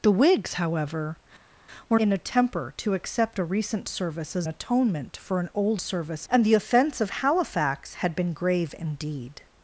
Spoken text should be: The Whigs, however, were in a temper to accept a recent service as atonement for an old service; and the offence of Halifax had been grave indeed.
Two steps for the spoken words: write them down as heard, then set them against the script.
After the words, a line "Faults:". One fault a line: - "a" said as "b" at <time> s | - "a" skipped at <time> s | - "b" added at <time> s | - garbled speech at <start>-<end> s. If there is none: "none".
The Whigs, however, were in a temper to accept a recent service as atonement for an old service; and the offence of Halifax had been grave indeed.
Faults:
none